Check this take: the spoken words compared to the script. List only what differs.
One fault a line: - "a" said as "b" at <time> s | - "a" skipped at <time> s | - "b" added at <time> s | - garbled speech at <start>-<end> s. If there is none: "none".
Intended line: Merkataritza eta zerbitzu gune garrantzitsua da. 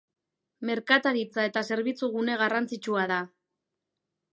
none